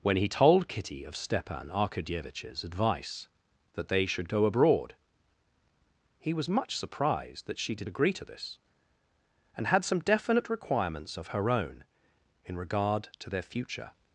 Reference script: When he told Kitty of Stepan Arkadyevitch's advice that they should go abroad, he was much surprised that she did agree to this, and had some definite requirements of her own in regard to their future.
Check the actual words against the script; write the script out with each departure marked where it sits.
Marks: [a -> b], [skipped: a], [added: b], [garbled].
When he told Kitty of Stepan Arkadyevitch's advice that they should go abroad, he was much surprised that she did agree to this, and had some definite requirements of her own in regard to their future.